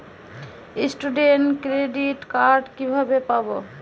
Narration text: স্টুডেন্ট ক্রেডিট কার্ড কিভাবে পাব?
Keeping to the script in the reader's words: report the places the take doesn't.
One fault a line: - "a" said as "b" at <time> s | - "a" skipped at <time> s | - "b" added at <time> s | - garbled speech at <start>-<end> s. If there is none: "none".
none